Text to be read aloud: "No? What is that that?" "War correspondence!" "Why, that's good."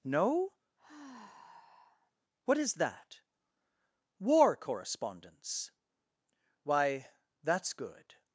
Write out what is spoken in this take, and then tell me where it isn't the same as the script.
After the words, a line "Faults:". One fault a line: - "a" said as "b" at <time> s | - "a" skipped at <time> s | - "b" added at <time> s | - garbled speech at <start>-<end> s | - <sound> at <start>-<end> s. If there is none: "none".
"No? What is that?" "War correspondence!" "Why, that's good."
Faults:
- sigh at 0.8-2.1 s
- "that" skipped at 3.2 s